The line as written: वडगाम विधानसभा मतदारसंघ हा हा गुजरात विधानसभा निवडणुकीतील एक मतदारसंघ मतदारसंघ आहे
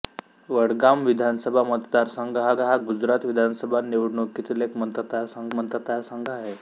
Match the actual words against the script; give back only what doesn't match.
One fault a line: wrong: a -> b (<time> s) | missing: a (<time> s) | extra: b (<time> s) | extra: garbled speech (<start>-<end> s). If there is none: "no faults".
no faults